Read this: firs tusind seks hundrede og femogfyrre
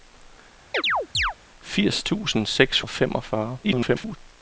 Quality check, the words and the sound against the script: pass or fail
fail